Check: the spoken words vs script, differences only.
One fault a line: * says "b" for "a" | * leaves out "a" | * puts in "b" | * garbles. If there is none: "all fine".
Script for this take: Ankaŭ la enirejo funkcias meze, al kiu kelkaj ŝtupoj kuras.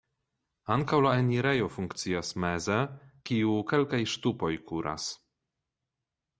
* leaves out "al"